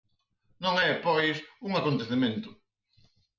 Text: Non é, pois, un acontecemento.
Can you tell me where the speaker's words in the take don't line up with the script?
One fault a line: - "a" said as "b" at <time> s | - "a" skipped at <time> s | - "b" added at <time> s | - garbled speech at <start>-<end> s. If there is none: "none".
none